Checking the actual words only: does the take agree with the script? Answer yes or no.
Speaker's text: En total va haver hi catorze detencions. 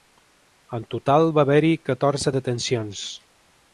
yes